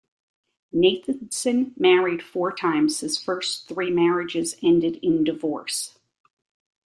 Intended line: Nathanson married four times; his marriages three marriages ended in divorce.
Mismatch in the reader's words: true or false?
true